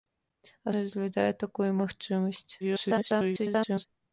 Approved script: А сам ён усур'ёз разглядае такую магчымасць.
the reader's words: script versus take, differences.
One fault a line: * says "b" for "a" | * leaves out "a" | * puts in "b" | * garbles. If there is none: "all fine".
* leaves out "сам ён усур'ёз"
* garbles